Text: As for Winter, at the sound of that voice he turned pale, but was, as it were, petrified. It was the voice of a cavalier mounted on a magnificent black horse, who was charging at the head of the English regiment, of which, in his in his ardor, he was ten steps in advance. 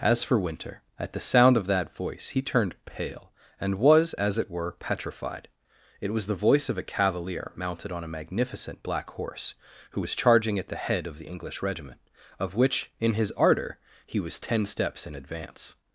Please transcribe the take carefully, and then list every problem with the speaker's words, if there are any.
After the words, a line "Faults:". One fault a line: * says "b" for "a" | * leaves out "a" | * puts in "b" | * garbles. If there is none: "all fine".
As for Winter, at the sound of that voice he turned pale, and was, as it were, petrified. It was the voice of a cavalier mounted on a magnificent black horse, who was charging at the head of the English regiment, of which, in his ardor, he was ten steps in advance.
Faults:
* says "and" for "but"
* leaves out "in his"